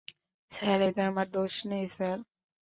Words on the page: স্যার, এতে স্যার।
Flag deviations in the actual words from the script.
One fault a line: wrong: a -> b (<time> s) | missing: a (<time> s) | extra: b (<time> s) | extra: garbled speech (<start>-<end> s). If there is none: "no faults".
extra: আমার দোষ নেই (1.1 s)